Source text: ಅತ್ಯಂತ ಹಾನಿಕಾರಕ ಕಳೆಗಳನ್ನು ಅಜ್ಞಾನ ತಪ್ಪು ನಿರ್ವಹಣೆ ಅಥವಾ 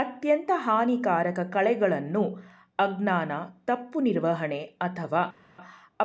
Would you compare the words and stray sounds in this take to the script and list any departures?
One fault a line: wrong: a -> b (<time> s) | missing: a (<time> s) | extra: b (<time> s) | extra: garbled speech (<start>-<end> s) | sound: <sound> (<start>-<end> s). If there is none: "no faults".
no faults